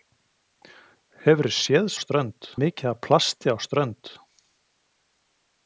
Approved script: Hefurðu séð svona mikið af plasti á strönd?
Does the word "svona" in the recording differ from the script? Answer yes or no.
yes